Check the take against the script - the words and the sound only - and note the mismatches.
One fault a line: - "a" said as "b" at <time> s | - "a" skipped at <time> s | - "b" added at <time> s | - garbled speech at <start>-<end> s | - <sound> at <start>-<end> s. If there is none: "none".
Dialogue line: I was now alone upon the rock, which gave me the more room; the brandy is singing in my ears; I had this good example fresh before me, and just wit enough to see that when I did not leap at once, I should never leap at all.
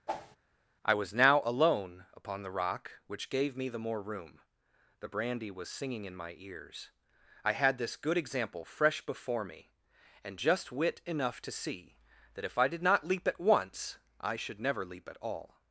- whoosh at 0.1-0.4 s
- "is" said as "was" at 5.5 s
- "when" said as "if" at 12.4 s